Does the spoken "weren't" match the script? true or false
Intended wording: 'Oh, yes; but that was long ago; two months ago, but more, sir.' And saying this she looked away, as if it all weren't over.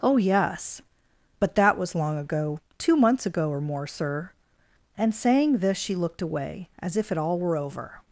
false